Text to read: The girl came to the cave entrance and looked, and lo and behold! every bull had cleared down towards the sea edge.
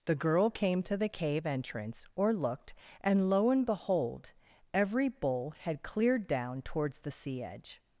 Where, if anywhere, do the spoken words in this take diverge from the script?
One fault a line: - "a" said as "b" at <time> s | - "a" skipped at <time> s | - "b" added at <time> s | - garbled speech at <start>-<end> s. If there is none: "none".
- "and" said as "or" at 2.1 s